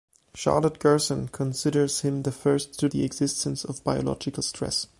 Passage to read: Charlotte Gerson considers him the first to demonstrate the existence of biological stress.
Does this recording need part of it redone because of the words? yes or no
yes